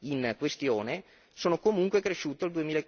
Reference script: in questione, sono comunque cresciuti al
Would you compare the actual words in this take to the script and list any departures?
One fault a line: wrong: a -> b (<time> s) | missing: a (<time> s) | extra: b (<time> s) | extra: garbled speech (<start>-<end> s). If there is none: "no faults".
no faults